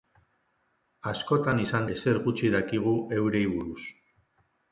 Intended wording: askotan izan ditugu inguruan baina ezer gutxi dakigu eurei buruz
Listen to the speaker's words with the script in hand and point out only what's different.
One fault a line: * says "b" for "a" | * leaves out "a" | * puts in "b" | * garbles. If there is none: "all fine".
* leaves out "ditugu inguruan baina"